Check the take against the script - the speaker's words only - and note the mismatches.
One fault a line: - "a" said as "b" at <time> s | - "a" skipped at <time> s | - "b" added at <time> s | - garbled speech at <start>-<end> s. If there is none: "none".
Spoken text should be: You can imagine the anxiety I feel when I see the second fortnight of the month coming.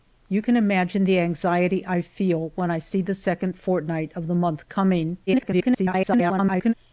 - garbled speech at 5.3-6.7 s